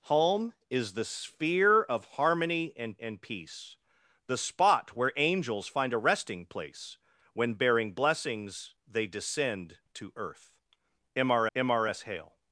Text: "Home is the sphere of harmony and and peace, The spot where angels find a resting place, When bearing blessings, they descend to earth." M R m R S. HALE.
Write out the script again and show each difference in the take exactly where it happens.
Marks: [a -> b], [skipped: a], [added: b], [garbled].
"Home is the sphere of harmony and and peace, The spot where angels find a resting place, When bearing blessings, they descend to earth." M R m R S. HALE.